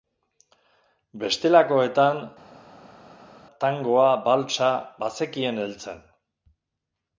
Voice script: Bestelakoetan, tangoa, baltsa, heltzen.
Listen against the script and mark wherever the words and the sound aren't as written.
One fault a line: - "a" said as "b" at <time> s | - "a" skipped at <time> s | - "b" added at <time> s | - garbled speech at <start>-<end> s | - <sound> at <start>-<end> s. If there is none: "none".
- "bazekien" added at 5.1 s